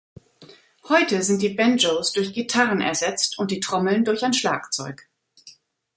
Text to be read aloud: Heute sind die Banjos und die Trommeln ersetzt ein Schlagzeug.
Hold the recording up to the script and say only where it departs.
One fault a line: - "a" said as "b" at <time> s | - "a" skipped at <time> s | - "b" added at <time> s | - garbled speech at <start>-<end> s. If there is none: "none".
- "durch Gitarren ersetzt" added at 2.1 s
- "ersetzt" said as "durch" at 4.0 s